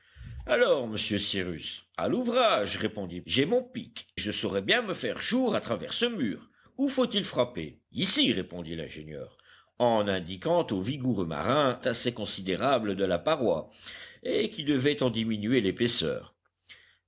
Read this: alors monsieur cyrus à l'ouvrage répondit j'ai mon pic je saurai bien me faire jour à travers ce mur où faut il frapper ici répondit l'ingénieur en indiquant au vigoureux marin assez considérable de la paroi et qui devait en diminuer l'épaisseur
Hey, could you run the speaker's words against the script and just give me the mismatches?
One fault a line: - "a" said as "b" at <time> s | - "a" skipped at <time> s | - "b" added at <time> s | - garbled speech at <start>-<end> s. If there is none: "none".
none